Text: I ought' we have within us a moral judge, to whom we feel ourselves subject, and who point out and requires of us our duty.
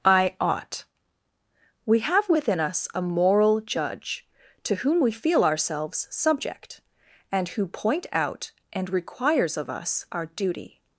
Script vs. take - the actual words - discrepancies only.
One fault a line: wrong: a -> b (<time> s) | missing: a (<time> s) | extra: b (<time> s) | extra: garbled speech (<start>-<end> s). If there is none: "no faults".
no faults